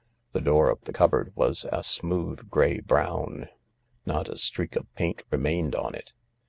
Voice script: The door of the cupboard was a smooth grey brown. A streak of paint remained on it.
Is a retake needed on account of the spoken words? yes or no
yes